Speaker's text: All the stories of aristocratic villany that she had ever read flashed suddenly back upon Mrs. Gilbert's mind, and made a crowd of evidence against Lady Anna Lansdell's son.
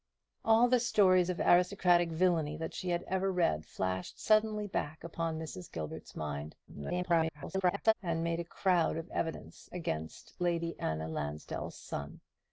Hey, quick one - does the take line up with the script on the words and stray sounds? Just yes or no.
no